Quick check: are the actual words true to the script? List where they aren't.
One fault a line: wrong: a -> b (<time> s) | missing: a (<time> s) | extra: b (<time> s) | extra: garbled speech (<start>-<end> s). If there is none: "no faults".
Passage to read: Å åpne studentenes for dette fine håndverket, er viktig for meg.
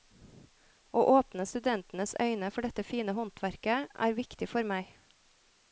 extra: øyne (2.3 s)